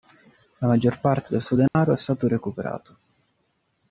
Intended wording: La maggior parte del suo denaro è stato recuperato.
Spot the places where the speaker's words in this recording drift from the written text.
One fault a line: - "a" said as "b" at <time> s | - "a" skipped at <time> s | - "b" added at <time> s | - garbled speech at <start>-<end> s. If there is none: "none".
none